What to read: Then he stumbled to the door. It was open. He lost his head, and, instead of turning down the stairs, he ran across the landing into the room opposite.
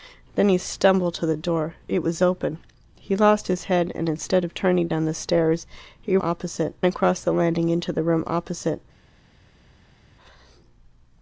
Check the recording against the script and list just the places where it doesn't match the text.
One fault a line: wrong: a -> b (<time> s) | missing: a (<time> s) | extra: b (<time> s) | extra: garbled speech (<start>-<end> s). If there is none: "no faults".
wrong: ran -> opposite (6.2 s)